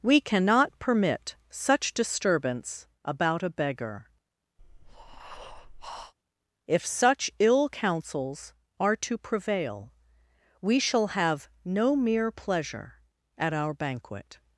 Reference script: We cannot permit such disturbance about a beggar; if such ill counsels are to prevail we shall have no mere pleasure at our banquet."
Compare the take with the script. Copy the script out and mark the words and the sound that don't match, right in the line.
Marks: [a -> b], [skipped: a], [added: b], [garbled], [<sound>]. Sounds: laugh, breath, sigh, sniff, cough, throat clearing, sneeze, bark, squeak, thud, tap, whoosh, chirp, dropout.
We cannot permit such disturbance about a beggar; [breath] if such ill counsels are to prevail we shall have no mere pleasure at our banquet."